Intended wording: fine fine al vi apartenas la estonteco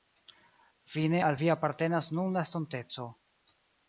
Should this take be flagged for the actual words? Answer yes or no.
yes